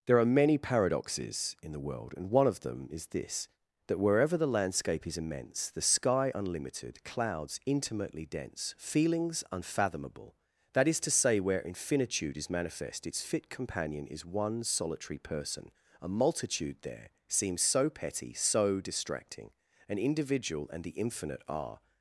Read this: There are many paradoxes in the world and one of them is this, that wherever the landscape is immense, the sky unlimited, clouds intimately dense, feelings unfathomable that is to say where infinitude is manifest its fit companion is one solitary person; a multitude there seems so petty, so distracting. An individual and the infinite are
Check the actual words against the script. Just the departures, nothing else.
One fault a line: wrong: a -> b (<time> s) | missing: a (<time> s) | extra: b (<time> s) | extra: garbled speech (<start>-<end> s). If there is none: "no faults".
no faults